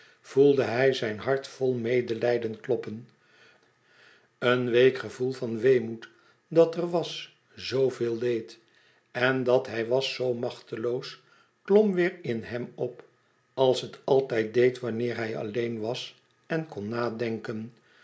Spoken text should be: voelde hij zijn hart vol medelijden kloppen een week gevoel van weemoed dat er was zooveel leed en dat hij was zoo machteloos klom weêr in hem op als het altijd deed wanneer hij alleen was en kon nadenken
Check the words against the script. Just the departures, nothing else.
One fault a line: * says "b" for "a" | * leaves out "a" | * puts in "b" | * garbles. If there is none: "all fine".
all fine